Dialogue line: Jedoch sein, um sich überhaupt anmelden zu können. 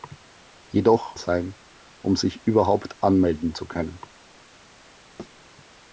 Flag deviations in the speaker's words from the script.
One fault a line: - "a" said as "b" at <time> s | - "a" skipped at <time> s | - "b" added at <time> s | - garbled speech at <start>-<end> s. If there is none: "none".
none